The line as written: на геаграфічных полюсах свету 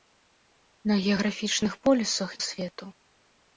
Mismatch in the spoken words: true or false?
false